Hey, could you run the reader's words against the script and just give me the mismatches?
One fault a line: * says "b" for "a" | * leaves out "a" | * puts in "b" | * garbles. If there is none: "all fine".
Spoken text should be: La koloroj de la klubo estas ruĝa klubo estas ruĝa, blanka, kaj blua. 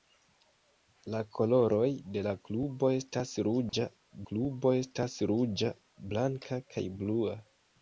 all fine